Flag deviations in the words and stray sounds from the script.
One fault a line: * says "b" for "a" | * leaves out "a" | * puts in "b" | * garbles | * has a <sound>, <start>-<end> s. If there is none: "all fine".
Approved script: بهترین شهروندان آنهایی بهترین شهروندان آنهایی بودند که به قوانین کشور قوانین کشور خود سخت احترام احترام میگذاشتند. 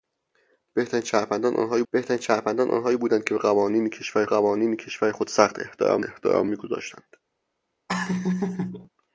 * has a laugh, 7.9-8.9 s